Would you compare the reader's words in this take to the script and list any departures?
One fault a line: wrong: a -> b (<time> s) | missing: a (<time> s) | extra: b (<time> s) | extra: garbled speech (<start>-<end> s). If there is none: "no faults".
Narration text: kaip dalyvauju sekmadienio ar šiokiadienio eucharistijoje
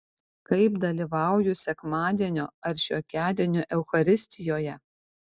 no faults